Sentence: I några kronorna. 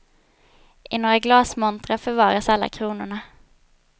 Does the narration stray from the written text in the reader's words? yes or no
yes